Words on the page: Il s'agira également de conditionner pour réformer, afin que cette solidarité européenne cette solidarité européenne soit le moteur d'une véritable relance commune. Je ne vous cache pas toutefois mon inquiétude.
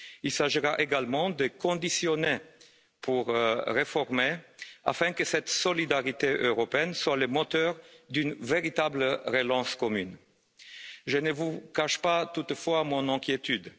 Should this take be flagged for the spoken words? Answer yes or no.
yes